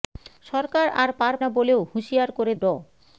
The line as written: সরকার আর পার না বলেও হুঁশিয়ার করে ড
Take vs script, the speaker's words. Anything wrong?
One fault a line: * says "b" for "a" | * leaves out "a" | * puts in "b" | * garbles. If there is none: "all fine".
all fine